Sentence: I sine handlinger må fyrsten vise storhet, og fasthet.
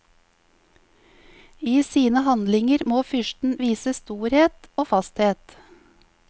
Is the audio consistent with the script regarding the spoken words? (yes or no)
yes